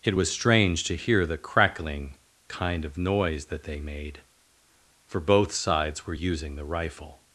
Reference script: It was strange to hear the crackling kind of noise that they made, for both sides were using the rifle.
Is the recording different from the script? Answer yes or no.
no